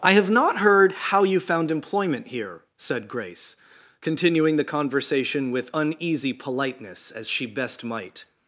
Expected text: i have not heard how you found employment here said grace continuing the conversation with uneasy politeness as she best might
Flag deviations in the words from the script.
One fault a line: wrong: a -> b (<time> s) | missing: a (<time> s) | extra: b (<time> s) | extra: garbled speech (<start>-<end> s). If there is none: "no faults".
no faults